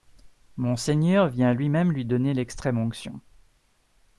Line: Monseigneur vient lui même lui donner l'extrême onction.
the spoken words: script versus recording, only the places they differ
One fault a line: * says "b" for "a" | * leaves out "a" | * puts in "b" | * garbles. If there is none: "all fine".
all fine